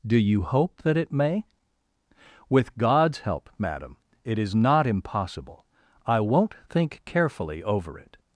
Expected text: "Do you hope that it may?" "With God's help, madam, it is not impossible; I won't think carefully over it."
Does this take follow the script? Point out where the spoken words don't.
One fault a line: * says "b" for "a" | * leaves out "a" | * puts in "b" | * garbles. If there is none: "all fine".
all fine